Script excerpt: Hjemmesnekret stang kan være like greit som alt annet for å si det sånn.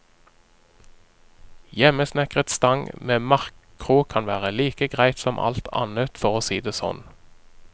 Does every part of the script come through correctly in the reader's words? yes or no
no